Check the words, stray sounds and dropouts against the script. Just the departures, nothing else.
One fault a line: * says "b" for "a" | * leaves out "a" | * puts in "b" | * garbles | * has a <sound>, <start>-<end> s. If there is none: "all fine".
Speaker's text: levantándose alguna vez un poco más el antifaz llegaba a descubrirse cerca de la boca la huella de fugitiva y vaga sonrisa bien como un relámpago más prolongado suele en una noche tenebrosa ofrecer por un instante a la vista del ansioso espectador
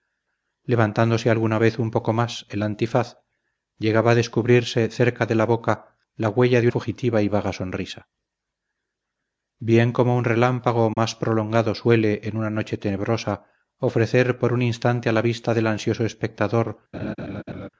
* has a dropout, 10.9-11.0 s
* has a laugh, 16.9-17.7 s